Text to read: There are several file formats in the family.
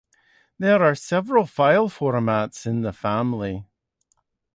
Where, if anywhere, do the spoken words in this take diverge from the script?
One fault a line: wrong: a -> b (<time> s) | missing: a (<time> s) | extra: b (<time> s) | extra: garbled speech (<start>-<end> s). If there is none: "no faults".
no faults